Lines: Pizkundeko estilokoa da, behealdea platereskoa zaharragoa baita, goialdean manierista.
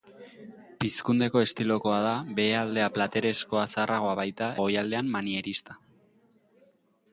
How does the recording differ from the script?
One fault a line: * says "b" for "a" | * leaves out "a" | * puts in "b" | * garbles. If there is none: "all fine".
all fine